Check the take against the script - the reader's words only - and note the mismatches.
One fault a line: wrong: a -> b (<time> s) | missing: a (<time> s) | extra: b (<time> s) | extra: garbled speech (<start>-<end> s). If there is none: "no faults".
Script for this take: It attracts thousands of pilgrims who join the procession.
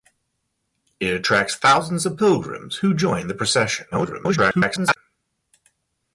extra: garbled speech (3.9-5.0 s)